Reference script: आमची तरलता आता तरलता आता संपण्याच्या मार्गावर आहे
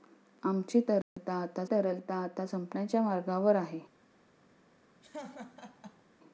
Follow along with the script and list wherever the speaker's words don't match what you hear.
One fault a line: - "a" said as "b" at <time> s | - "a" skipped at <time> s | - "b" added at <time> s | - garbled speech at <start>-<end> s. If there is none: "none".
none